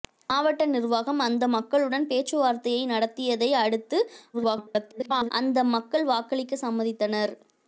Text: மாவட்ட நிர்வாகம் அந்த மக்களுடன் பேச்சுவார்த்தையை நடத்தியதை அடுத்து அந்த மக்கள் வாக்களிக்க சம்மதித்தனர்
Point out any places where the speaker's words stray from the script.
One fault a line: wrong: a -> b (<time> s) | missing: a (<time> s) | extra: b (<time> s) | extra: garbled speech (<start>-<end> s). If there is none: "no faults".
extra: garbled speech (4.3-5.3 s)